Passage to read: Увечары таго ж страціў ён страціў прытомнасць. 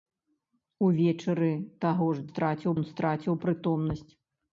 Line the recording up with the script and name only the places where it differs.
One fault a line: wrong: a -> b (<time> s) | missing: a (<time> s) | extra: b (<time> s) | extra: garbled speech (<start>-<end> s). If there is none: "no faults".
no faults